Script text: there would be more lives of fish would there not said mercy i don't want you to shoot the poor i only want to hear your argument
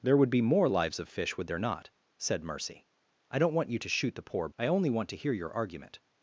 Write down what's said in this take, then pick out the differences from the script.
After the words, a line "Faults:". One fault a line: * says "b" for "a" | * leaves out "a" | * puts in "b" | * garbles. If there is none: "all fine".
there would be more lives of fish would there not said mercy i don't want you to shoot the poor i only want to hear your argument
Faults:
all fine